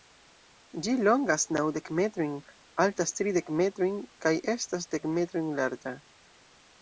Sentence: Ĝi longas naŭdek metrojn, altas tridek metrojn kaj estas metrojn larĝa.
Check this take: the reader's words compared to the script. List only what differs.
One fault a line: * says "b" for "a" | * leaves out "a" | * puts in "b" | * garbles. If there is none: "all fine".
* puts in "dek"